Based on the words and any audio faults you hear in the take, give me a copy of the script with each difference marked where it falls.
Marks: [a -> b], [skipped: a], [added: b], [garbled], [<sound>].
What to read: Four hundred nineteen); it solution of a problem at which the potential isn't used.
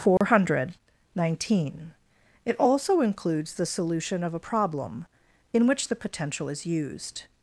Four [dropout] hundred nineteen); it [added: also includes the] solution of a problem [at -> in] which the potential [isn't -> is] used.